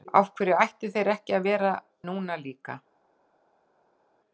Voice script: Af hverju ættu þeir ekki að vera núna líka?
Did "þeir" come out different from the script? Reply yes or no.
no